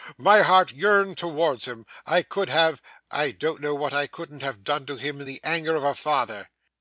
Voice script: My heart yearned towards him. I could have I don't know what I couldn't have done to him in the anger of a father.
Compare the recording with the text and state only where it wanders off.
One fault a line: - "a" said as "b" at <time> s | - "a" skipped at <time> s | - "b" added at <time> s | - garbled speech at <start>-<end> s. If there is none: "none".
none